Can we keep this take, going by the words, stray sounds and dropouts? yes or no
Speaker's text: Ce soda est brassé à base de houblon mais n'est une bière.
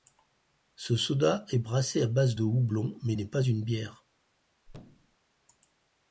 no